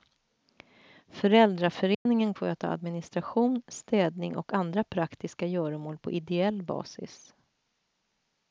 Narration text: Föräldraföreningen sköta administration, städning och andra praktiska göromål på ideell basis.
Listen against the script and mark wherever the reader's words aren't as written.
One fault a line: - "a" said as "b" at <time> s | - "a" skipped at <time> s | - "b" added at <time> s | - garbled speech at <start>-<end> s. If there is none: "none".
none